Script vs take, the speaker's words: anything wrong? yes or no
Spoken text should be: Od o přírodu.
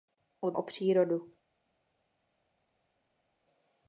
no